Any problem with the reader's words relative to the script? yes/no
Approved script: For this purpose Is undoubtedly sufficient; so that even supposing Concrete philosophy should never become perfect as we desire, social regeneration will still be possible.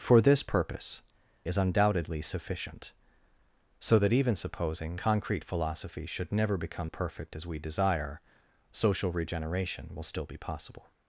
no